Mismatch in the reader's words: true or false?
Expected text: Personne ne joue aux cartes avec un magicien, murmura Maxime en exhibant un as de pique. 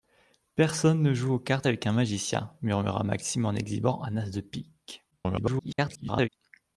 true